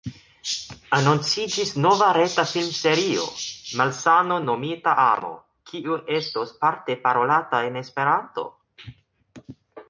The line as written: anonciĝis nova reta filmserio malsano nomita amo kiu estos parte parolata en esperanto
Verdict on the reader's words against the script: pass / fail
pass